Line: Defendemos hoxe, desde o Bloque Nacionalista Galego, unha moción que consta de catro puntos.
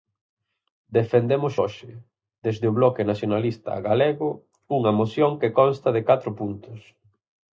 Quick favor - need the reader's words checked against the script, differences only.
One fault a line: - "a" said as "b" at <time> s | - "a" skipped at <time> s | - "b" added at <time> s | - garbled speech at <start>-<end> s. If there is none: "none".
none